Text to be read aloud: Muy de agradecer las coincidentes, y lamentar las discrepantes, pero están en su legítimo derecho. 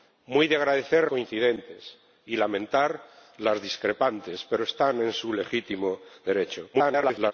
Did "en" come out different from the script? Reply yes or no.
no